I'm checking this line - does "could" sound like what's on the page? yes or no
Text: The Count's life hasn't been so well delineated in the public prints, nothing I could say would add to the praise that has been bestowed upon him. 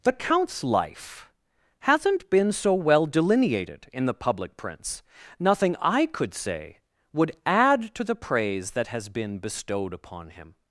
yes